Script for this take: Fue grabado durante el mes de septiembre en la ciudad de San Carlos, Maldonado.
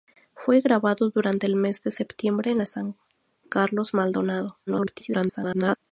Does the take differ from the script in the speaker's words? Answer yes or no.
yes